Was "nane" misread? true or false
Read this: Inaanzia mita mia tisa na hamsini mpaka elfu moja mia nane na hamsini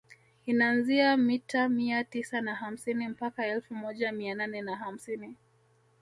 false